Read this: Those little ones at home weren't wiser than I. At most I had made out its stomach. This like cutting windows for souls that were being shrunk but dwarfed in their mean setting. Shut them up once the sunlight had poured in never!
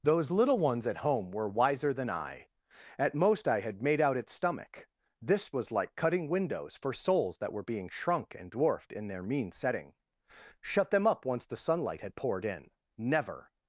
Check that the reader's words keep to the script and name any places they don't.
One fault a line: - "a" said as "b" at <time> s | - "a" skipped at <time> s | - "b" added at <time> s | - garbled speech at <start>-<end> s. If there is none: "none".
- "weren't" said as "were" at 1.3 s
- "was" added at 5.5 s
- "but" said as "and" at 8.3 s